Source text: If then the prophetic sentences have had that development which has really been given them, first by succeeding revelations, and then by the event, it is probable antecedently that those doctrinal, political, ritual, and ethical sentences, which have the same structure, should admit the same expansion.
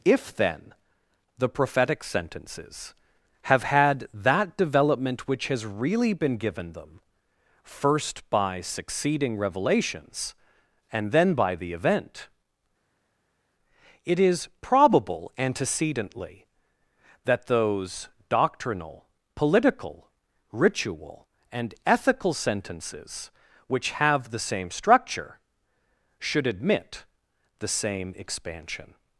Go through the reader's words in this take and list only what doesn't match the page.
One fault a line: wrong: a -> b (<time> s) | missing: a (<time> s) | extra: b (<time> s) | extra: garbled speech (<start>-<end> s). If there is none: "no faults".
no faults